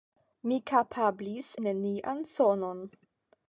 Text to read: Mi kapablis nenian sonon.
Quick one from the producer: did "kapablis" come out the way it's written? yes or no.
yes